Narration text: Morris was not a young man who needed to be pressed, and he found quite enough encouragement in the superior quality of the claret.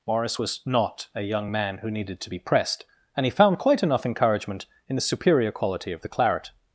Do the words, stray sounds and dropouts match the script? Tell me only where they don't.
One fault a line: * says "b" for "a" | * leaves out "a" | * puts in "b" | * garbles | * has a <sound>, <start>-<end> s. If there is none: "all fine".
all fine